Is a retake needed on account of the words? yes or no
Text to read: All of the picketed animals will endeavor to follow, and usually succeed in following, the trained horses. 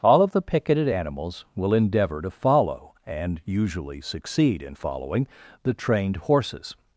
no